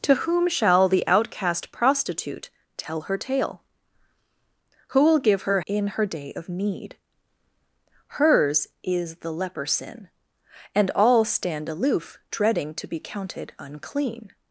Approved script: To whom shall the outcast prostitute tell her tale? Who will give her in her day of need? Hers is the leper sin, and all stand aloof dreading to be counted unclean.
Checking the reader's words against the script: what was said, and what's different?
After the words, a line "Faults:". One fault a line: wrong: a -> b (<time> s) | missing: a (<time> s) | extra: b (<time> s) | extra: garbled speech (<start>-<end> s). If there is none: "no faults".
To whom shall the outcast prostitute tell her tale? Who will give her in her day of need? Hers is the leper sin, and all stand aloof dreading to be counted unclean.
Faults:
no faults